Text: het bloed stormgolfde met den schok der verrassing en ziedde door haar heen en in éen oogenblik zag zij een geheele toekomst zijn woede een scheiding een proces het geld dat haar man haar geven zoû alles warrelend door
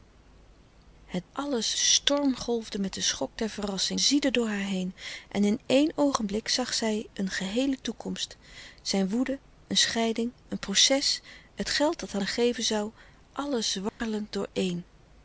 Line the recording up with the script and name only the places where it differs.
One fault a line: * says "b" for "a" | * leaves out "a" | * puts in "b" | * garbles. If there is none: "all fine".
* says "alles" for "bloed"
* leaves out "en"
* leaves out "man"